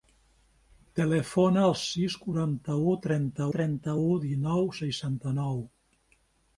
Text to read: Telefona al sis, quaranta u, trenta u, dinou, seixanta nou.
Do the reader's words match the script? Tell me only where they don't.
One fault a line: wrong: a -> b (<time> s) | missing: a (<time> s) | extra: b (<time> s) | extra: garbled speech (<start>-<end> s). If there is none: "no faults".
extra: trenta (3.5 s)